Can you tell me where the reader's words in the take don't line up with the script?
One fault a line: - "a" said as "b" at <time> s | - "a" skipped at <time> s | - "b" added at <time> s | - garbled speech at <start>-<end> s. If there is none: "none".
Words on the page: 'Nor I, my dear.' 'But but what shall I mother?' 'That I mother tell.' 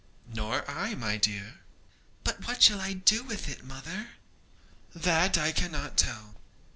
- "but" skipped at 2.5 s
- "do with it" added at 2.9 s
- "mother" said as "cannot" at 5.5 s